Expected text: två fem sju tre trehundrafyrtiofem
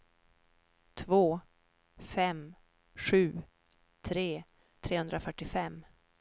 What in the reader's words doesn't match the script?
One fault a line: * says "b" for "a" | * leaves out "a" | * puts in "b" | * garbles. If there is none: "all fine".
all fine